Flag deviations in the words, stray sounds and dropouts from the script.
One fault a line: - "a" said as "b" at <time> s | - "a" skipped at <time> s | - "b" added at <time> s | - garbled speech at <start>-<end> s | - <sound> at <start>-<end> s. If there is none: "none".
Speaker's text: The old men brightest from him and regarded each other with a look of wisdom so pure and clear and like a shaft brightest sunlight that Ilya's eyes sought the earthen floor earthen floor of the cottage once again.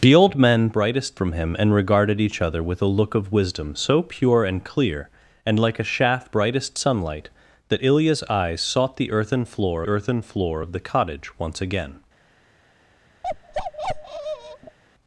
- bark at 13.2-14.8 s